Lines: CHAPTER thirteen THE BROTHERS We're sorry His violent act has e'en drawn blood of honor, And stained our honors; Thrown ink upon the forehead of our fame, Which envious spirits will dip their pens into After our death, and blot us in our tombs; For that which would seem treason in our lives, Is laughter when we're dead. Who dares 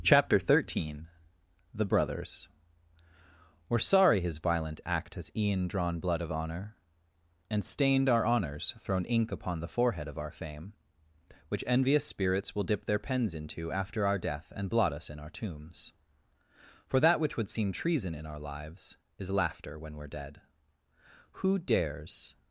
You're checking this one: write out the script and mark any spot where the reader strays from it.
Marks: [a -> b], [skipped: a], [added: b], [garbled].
CHAPTER thirteen THE BROTHERS We're sorry His violent act has e'en drawn blood of honor, And stained our honors; Thrown ink upon the forehead of our fame, Which envious spirits will dip their pens into After our death, and blot us in our tombs; For that which would seem treason in our lives, Is laughter when we're dead. Who dares